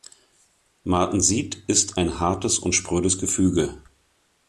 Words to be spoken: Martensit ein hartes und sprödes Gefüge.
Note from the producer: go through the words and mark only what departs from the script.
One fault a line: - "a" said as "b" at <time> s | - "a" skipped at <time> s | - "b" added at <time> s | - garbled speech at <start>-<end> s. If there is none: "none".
- "ist" added at 1.7 s